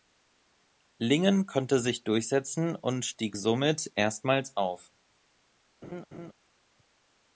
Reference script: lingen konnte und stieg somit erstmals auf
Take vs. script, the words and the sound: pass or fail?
fail